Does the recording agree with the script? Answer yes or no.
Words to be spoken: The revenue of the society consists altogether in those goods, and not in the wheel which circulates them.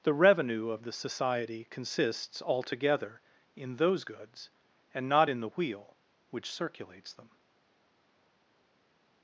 yes